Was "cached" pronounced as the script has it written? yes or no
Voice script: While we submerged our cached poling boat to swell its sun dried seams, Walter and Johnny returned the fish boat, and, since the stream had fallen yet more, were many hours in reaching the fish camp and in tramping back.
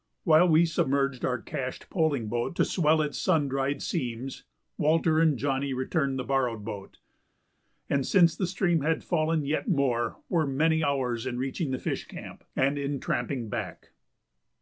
yes